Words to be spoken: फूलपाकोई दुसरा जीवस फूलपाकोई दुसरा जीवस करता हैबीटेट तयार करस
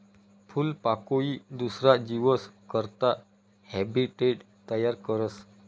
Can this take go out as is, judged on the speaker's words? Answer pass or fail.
fail